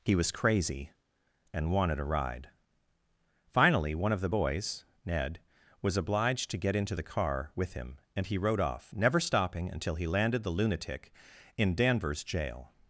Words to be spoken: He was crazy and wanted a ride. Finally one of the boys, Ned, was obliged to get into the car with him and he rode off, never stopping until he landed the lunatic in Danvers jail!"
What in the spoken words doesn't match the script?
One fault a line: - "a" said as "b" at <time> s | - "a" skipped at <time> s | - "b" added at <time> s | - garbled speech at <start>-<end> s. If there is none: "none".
none